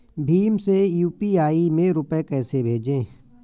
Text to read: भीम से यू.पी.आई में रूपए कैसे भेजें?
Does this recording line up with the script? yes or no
yes